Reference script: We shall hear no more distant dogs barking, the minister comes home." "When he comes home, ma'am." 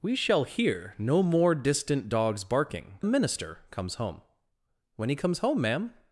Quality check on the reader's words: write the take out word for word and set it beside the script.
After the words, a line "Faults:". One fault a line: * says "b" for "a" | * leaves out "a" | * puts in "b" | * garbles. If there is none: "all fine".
We shall hear no more distant dogs barking, the minister comes home." "When he comes home, ma'am."
Faults:
all fine